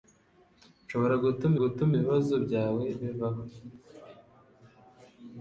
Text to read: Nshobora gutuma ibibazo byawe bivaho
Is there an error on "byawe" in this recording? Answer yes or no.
no